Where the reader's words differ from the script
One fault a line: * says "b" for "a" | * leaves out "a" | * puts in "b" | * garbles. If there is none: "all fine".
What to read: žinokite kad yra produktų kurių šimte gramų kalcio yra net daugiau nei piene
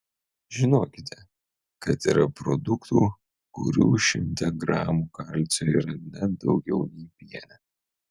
all fine